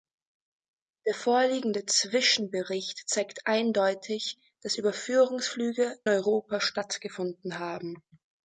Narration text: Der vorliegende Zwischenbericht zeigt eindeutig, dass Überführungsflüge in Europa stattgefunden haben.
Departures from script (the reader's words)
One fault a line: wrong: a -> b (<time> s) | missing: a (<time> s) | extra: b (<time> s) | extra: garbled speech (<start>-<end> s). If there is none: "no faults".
missing: in (6.0 s)